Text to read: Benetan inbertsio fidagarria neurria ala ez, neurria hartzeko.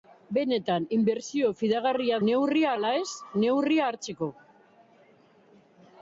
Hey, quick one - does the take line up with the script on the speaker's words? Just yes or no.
yes